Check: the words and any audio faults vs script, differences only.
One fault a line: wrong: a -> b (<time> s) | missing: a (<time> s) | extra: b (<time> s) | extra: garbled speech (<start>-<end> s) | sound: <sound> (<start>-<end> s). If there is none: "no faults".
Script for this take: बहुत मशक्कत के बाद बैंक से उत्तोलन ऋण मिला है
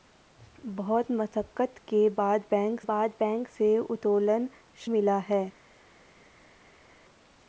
extra: बाद बैंक (2.9 s)
missing: ऋण (4.5 s)